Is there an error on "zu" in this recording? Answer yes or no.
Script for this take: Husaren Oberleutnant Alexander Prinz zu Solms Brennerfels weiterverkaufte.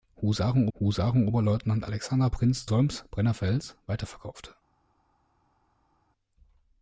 yes